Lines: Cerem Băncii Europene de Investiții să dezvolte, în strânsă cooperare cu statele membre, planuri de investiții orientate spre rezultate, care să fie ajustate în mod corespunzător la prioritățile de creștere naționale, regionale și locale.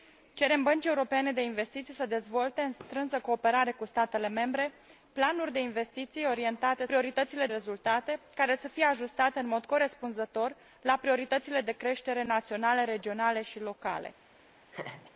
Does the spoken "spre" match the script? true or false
false